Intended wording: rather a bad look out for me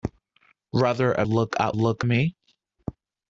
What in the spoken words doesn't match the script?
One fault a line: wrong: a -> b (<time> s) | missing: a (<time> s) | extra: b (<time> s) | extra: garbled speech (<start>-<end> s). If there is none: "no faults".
missing: bad (1.3 s)
wrong: for -> look (1.7 s)